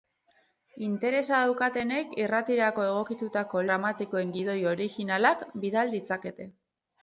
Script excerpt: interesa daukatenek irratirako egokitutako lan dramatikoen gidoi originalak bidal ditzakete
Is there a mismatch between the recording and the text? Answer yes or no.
yes